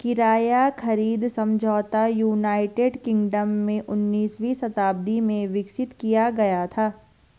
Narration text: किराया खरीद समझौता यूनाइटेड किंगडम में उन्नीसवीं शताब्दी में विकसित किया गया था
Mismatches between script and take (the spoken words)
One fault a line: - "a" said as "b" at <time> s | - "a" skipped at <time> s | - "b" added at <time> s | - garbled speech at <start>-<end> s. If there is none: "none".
none